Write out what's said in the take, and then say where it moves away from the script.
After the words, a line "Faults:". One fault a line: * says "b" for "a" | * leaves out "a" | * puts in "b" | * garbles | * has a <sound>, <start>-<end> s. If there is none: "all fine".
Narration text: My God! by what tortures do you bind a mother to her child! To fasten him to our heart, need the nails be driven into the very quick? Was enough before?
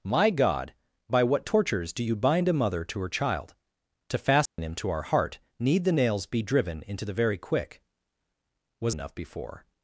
My God! by what tortures do you bind a mother to her child! To fasten him to our heart, need the nails be driven into the very quick? Was enough before?
Faults:
* has a dropout, 4.5-4.6 s